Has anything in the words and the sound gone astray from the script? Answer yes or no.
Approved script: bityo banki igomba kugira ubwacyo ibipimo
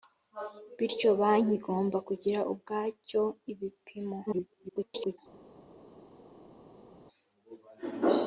yes